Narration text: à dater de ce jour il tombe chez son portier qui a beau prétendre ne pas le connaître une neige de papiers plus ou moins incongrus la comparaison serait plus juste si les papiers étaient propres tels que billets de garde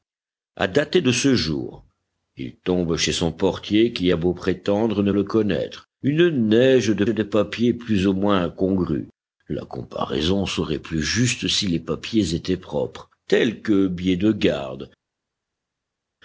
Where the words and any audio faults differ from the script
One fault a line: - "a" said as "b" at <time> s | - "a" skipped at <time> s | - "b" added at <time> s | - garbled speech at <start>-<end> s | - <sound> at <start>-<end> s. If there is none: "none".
- "pas" skipped at 5.1 s
- "de" added at 7.1 s